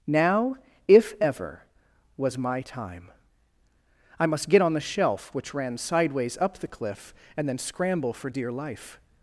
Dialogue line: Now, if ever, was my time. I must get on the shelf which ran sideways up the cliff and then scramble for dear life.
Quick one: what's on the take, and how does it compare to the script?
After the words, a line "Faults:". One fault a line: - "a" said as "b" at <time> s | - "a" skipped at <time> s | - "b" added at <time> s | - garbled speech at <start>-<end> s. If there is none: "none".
Now, if ever, was my time. I must get on the shelf which ran sideways up the cliff and then scramble for dear life.
Faults:
none